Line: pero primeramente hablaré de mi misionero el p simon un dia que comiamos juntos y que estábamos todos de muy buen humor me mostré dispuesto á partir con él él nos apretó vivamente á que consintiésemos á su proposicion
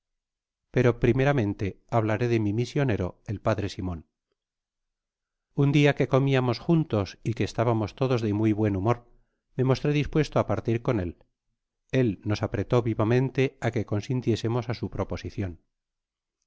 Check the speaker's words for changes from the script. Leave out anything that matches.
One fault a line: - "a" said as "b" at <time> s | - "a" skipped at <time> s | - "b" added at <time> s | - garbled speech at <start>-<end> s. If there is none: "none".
none